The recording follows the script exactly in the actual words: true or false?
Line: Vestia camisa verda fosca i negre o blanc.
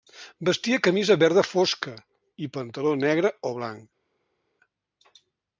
false